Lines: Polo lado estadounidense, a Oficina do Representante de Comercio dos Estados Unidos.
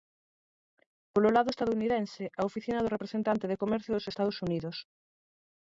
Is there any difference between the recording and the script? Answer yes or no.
no